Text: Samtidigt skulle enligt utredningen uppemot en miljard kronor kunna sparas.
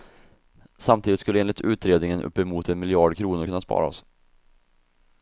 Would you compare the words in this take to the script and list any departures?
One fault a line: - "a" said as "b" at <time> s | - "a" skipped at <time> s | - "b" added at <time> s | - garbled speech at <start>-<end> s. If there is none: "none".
none